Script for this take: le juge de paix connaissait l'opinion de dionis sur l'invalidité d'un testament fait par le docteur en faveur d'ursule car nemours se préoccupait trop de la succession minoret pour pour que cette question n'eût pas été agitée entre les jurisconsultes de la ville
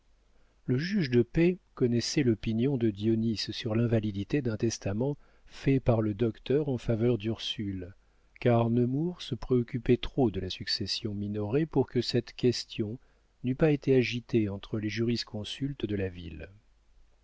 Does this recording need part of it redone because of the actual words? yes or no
yes